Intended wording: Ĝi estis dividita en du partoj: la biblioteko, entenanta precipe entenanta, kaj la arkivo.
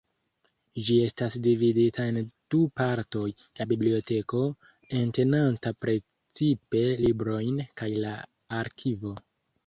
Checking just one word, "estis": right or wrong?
wrong